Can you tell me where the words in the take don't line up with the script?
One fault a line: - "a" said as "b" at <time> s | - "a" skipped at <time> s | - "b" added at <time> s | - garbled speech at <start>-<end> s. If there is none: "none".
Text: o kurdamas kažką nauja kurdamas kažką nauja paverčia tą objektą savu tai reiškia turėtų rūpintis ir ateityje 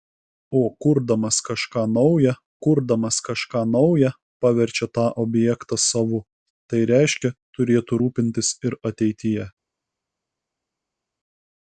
none